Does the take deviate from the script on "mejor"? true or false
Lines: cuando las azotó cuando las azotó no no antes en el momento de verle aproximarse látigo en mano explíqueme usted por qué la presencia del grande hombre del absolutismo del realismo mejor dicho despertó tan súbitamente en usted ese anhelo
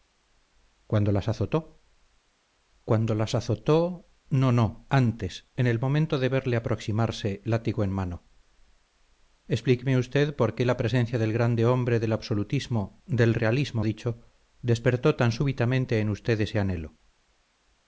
true